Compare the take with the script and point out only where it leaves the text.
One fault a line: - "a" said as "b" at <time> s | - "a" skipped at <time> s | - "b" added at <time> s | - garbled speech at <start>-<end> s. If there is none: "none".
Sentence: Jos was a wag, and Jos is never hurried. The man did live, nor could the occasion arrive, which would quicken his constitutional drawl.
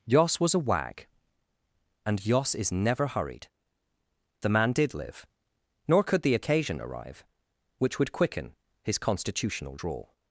none